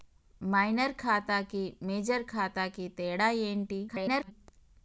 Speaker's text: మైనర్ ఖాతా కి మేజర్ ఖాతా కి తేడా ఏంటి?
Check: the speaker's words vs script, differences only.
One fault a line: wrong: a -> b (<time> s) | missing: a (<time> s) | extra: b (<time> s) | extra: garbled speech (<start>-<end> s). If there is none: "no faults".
extra: garbled speech (3.9-4.3 s)